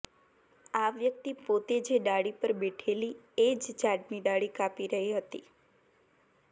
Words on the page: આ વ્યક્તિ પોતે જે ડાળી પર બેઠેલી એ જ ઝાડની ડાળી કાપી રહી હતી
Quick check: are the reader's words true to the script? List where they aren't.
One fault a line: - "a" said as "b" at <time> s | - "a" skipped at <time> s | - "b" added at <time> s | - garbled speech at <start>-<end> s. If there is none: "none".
none